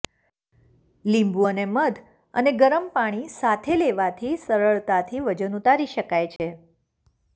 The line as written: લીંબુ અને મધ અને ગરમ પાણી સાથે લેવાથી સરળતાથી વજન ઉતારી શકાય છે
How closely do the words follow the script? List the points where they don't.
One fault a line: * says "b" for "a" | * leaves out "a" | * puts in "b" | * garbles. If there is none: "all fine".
all fine